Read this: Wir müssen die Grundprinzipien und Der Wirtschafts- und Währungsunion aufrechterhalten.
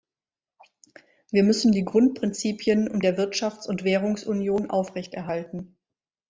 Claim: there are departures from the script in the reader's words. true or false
false